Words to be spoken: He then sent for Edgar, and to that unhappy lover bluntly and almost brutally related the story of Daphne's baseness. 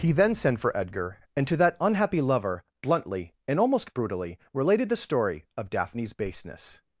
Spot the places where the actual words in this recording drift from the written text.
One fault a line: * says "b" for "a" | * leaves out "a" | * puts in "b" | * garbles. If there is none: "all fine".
all fine